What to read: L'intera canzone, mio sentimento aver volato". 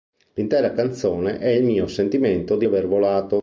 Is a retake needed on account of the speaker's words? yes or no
yes